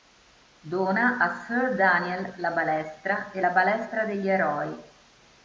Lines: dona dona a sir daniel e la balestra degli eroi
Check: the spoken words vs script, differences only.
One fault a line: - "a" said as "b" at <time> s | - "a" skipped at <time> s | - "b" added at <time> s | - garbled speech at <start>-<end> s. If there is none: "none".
- "dona" skipped at 1.2 s
- "la balestra" added at 2.4 s